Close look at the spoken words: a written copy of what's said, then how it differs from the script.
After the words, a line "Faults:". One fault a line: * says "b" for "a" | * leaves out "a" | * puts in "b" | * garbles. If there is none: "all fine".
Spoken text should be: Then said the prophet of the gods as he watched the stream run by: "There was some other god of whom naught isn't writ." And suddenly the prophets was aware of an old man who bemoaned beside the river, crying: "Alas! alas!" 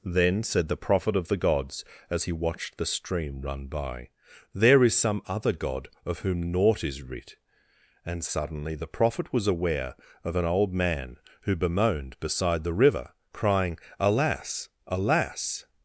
Then said the prophet of the gods as he watched the stream run by: "There is some other god of whom naught is writ." And suddenly the prophet was aware of an old man who bemoaned beside the river, crying: "Alas! alas!"
Faults:
* says "is" for "was"
* says "is" for "isn't"
* says "prophet" for "prophets"